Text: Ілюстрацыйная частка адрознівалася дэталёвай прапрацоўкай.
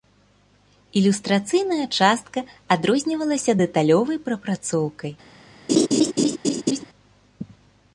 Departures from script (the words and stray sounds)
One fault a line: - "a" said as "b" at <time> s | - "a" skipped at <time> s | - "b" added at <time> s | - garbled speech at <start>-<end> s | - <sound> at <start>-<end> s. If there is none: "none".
- laugh at 5.7-6.8 s